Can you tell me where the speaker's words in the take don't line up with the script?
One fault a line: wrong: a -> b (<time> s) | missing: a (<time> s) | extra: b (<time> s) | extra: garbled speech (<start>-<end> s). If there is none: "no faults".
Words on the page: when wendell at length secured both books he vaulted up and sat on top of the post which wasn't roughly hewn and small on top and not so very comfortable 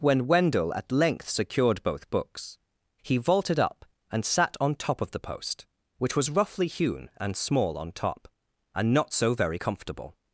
wrong: wasn't -> was (6.2 s)